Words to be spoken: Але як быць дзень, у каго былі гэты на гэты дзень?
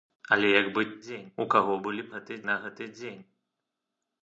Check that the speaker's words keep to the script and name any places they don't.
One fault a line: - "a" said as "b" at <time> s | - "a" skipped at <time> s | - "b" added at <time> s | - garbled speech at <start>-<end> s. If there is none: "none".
none